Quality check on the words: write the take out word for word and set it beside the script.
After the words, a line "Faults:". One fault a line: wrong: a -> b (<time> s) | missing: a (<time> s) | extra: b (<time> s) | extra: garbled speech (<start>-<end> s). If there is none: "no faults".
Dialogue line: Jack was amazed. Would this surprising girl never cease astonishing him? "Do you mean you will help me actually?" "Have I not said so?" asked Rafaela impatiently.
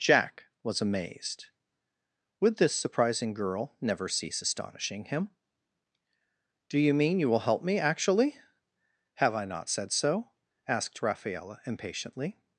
Jack was amazed. Would this surprising girl never cease astonishing him? "Do you mean you will help me actually?" "Have I not said so?" asked Rafaela impatiently.
Faults:
no faults